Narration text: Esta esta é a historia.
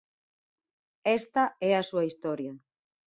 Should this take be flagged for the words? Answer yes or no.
yes